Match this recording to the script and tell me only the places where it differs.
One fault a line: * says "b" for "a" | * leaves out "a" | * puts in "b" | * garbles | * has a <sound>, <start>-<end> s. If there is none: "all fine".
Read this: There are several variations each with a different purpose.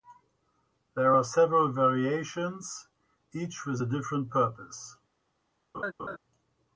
* has a laugh, 5.7-6.2 s